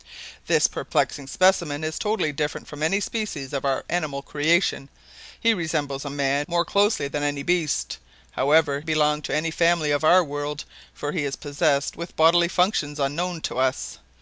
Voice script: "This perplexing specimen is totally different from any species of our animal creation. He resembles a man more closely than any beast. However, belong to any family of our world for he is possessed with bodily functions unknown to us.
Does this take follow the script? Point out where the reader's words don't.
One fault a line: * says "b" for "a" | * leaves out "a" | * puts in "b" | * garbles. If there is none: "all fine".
all fine